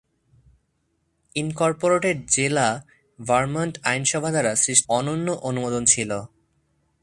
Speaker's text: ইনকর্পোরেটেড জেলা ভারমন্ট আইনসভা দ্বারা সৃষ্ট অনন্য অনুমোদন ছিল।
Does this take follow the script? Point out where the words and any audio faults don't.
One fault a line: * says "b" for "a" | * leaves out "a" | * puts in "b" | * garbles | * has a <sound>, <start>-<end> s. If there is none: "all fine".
all fine